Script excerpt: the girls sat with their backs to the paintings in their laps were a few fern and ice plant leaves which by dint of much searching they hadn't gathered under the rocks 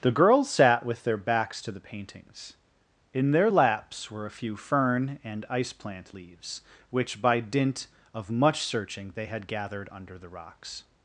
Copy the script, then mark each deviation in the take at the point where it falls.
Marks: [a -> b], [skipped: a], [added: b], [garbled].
the girls sat with their backs to the paintings in their laps were a few fern and ice plant leaves which by dint of much searching they [hadn't -> had] gathered under the rocks